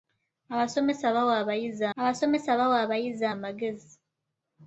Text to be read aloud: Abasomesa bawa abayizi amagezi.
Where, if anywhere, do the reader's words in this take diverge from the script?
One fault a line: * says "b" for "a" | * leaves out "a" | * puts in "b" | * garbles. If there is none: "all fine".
* puts in "abasomesa bawa abayizi"